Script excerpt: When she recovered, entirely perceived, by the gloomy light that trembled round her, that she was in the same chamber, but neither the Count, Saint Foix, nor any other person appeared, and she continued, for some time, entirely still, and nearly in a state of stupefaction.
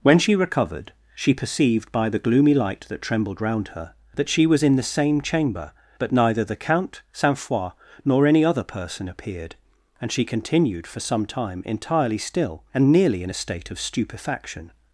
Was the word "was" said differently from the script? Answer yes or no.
no